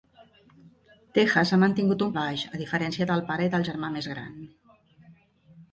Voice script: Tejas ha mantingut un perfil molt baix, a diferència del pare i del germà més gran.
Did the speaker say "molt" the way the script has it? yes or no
no